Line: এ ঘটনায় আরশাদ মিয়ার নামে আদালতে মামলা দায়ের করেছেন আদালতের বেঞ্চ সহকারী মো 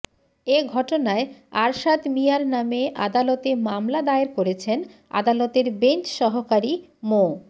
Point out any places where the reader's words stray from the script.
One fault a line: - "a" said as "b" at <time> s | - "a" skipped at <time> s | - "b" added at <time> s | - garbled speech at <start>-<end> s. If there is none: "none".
none